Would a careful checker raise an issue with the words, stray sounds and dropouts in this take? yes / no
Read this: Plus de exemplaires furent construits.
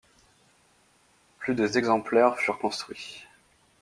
no